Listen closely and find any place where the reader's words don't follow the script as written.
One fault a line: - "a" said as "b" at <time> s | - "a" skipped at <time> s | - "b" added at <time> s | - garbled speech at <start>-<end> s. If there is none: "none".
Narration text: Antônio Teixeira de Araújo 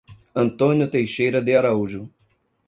none